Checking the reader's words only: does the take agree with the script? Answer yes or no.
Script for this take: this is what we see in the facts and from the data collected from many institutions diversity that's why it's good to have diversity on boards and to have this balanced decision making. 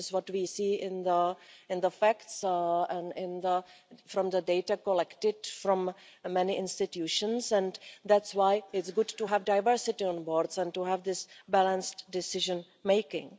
no